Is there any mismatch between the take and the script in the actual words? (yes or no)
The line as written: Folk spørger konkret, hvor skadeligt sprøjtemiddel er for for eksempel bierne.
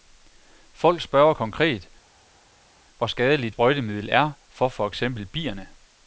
no